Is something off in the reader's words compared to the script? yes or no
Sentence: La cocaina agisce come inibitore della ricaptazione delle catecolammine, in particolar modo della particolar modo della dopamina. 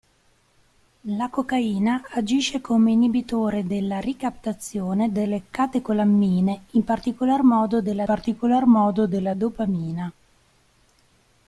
no